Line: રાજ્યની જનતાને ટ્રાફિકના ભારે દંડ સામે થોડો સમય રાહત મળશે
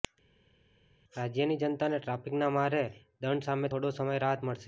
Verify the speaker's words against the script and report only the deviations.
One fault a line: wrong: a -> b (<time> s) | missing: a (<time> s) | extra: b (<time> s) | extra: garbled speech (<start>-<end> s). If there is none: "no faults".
no faults